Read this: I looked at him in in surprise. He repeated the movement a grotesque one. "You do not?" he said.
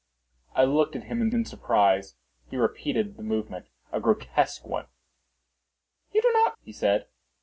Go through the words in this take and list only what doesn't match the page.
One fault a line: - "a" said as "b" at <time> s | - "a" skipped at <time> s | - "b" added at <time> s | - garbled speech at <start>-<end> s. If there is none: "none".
none